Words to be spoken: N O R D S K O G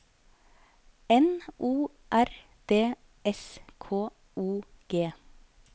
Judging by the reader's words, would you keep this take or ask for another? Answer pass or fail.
pass